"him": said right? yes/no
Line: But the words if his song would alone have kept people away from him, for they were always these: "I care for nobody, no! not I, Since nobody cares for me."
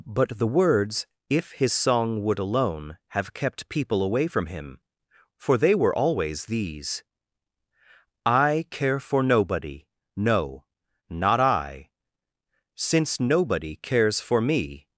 yes